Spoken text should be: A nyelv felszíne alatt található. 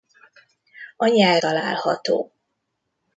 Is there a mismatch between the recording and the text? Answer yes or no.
yes